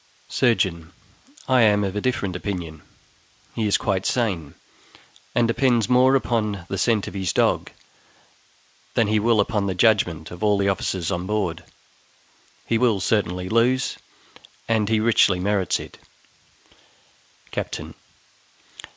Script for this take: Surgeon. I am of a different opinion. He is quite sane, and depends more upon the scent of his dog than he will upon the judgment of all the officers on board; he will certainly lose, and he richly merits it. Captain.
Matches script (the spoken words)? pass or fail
pass